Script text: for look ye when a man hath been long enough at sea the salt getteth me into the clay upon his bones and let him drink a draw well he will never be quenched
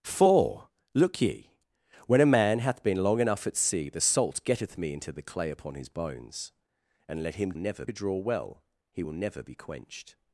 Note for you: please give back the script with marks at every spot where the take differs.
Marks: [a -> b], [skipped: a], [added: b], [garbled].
for look ye when a man hath been long enough at sea the salt getteth me into the clay upon his bones and let him [drink -> never] a draw well he will never be quenched